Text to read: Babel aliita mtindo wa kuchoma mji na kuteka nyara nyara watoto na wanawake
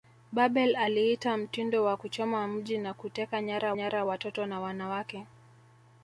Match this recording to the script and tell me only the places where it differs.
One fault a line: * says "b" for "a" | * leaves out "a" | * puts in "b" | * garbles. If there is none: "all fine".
all fine